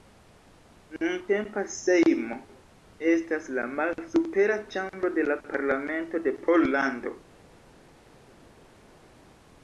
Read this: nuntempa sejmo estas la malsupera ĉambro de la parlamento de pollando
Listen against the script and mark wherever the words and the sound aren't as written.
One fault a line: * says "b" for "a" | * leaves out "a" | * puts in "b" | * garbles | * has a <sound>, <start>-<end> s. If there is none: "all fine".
all fine